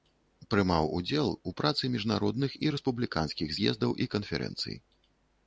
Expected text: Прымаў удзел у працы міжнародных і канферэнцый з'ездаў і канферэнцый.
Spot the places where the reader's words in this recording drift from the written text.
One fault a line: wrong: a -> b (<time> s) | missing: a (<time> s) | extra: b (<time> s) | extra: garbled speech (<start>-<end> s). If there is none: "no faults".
wrong: канферэнцый -> рэспубліканскіх (2.8 s)